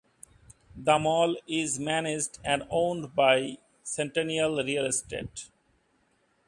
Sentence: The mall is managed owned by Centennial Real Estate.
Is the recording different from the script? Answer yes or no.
yes